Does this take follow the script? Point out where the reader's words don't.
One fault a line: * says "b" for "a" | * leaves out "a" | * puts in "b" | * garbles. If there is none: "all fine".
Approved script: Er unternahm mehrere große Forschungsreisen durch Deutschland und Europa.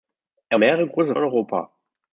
* leaves out "unternahm"
* leaves out "Forschungsreisen durch Deutschland"